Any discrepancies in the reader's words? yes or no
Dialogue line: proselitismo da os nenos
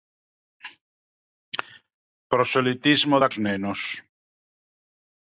no